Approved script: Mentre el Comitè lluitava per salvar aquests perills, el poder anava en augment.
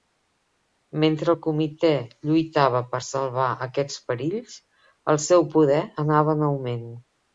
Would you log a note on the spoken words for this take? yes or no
yes